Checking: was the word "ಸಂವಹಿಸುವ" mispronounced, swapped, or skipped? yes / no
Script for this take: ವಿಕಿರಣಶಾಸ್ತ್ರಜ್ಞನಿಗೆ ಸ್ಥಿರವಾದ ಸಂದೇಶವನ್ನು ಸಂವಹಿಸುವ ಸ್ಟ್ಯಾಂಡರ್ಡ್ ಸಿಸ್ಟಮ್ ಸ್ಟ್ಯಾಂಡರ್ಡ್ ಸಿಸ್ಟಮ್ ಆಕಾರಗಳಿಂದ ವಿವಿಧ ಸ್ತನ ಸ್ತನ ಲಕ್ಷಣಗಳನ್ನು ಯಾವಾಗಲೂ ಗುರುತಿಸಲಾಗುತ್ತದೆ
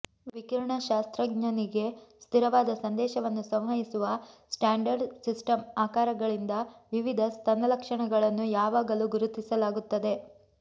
no